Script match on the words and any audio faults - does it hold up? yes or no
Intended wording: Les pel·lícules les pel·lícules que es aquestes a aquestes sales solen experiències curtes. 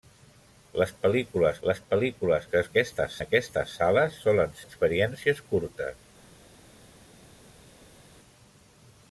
yes